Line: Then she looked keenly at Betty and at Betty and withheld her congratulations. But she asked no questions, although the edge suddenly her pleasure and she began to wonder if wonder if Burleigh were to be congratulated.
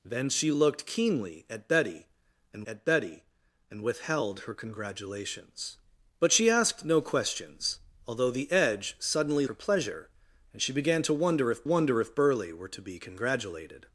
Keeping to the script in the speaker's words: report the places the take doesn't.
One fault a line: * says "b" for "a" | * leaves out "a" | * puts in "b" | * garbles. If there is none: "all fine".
all fine